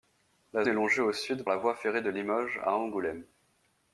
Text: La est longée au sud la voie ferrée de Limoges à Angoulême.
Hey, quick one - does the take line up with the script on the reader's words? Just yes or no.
yes